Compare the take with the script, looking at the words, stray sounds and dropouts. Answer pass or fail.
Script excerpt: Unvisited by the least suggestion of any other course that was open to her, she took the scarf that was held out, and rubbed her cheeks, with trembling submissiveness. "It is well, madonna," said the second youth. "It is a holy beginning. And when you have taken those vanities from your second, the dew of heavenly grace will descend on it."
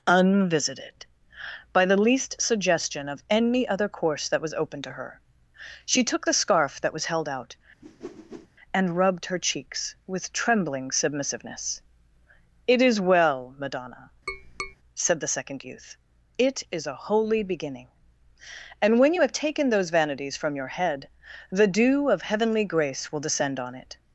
fail